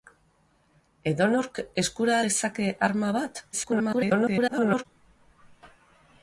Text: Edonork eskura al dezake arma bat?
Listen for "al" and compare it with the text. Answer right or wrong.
wrong